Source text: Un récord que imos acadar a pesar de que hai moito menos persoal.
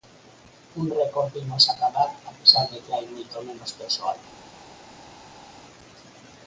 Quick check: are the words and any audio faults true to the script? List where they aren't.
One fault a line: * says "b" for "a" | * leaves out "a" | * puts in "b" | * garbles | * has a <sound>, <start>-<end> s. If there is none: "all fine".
all fine